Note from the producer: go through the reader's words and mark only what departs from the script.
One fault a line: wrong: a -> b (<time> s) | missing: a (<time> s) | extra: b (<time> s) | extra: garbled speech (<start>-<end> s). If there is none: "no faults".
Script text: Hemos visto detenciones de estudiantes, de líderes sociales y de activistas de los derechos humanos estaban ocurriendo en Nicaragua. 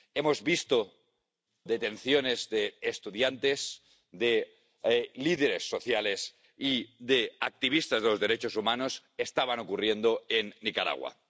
no faults